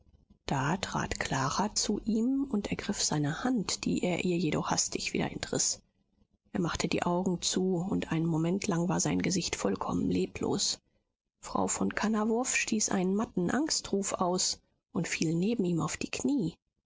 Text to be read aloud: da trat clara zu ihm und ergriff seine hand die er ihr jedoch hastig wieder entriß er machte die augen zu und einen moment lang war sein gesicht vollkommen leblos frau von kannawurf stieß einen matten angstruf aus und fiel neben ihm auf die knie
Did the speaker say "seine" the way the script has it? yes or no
yes